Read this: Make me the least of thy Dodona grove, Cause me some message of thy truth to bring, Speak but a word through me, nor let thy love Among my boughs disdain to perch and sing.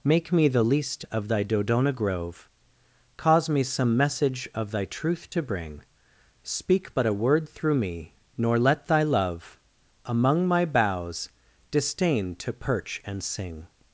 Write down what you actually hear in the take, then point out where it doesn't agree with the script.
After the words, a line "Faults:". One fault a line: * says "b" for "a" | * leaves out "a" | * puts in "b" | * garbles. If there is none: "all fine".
Make me the least of thy Dodona grove, Cause me some message of thy truth to bring, Speak but a word through me, nor let thy love Among my boughs disdain to perch and sing.
Faults:
all fine